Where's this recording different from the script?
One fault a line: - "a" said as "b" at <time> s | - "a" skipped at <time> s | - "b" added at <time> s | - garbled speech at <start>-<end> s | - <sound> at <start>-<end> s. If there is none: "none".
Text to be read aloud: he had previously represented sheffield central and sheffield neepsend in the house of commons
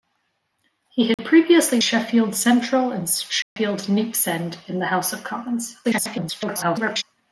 - dropout at 1.1-1.2 s
- "represented" skipped at 1.8 s
- dropout at 3.4-3.6 s
- garbled speech at 5.8-7.0 s